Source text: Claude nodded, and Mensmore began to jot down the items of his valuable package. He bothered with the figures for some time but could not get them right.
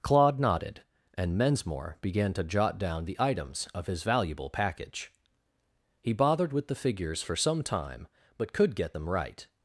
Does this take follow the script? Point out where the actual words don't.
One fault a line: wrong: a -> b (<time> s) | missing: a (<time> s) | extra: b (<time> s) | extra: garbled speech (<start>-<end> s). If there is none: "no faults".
missing: not (8.7 s)